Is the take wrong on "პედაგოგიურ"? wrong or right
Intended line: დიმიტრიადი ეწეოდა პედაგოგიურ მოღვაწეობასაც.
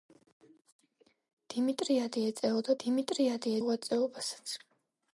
wrong